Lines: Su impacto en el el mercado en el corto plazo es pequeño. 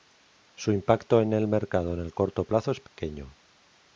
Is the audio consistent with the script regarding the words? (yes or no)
no